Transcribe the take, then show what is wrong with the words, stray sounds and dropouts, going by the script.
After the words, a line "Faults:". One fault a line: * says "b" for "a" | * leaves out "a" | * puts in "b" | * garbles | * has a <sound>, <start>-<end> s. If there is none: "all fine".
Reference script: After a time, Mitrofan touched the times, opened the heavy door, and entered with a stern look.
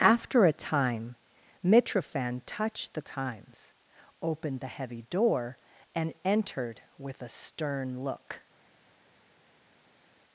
After a time, Mitrofan touched the times, opened the heavy door, and entered with a stern look.
Faults:
all fine